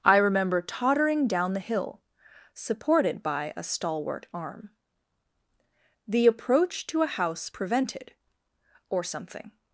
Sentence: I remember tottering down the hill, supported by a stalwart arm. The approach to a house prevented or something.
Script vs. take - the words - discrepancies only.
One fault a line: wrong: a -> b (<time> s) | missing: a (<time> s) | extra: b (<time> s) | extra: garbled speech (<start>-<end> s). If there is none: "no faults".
no faults